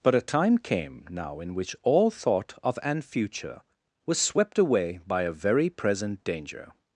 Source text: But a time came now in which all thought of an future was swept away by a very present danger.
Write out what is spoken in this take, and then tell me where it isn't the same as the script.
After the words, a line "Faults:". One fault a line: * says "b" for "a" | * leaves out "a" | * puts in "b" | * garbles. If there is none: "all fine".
But a time came now in which all thought of an future was swept away by a very present danger.
Faults:
all fine